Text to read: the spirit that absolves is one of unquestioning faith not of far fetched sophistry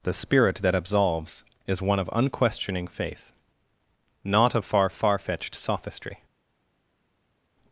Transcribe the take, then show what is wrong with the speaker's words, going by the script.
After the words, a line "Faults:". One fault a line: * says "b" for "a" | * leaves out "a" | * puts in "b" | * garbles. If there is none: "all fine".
the spirit that absolves is one of unquestioning faith not of far far fetched sophistry
Faults:
* puts in "far"